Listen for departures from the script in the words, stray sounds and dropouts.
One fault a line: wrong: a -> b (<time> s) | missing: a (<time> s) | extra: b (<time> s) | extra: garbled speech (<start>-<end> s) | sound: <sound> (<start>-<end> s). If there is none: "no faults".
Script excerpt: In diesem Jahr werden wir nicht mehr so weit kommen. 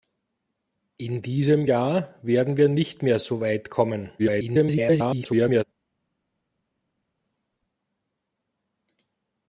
extra: garbled speech (4.2-5.6 s)